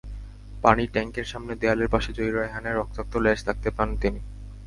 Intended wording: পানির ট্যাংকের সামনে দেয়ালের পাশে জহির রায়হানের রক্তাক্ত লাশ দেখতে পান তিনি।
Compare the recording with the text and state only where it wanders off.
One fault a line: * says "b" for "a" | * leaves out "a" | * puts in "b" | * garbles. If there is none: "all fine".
all fine